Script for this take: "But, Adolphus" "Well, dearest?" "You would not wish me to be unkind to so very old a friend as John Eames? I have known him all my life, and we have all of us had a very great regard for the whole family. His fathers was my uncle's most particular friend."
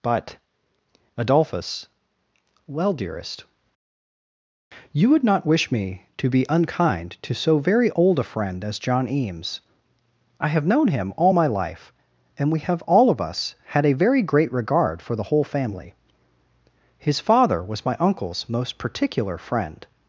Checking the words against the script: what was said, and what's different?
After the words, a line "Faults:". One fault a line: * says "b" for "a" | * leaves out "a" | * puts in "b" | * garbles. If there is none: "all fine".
"But, Adolphus" "Well, dearest?" "You would not wish me to be unkind to so very old a friend as John Eames? I have known him all my life, and we have all of us had a very great regard for the whole family. His father was my uncle's most particular friend."
Faults:
* says "father" for "fathers"